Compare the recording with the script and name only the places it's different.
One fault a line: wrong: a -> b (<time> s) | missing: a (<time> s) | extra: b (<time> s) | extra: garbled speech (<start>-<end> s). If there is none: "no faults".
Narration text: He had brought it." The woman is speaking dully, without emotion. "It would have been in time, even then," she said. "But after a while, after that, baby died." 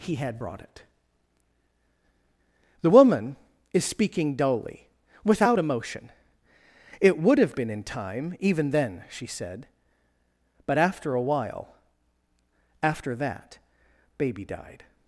no faults